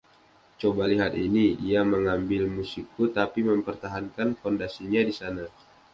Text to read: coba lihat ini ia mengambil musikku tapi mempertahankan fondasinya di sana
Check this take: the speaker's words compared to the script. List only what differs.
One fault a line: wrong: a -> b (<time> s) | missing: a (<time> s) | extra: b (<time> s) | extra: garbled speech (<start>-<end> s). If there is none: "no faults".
no faults